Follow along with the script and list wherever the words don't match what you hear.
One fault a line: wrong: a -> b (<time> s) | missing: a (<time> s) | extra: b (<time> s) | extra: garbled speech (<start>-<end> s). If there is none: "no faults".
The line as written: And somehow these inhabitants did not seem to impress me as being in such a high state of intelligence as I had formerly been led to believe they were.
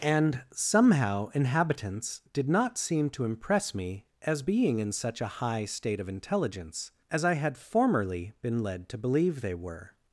missing: these (1.3 s)